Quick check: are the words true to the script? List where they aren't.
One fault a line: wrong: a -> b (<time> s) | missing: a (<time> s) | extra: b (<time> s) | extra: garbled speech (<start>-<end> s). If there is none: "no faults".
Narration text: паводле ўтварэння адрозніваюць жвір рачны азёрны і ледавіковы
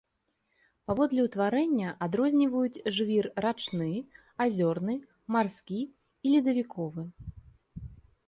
extra: марскі (5.3 s)